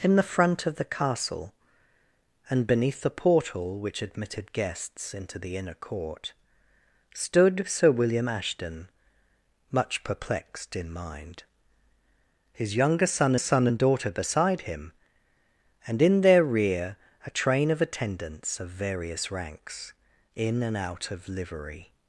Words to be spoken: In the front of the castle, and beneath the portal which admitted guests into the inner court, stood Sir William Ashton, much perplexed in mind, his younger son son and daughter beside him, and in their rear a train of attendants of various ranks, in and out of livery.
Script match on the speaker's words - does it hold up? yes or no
yes